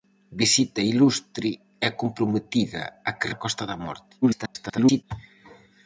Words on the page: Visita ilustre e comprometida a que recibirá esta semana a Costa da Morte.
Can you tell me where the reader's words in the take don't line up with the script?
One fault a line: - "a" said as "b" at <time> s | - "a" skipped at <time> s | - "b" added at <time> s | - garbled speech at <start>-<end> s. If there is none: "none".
- "recibirá esta semana" skipped at 3.3 s
- garbled speech at 4.2-5.0 s